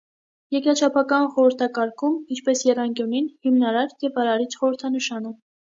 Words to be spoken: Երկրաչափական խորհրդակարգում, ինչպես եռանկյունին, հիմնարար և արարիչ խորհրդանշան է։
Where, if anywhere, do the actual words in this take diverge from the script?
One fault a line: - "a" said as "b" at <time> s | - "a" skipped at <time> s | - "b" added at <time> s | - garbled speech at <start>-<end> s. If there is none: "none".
none